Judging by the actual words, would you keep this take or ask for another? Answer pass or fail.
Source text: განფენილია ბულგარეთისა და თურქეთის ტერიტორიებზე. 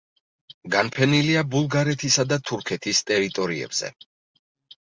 pass